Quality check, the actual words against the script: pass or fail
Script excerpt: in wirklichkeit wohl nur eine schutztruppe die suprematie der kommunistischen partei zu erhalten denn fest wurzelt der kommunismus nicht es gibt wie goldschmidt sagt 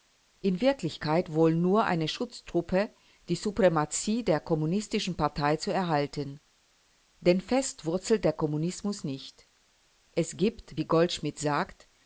pass